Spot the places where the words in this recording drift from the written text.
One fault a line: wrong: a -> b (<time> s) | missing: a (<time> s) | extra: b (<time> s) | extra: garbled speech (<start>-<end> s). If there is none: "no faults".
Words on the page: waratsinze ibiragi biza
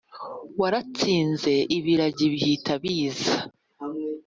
extra: bihita (2.3 s)